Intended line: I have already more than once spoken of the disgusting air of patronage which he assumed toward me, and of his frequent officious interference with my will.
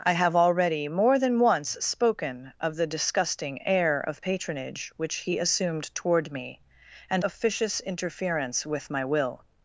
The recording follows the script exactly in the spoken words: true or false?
false